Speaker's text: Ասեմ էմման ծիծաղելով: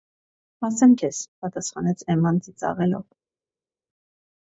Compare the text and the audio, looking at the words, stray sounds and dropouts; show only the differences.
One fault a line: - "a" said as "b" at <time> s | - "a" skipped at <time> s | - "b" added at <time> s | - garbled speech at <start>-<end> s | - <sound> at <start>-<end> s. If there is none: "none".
- "քեզ պատասխանեց" added at 1.0 s